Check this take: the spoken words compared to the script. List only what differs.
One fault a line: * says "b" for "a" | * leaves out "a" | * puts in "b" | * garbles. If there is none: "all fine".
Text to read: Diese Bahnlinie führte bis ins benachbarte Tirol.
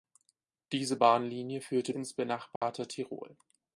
* leaves out "bis"